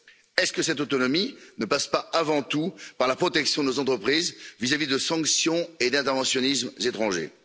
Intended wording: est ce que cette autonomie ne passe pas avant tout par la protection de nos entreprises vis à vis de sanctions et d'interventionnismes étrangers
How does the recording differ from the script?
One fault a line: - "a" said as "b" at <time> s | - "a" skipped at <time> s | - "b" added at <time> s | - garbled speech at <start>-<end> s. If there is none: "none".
none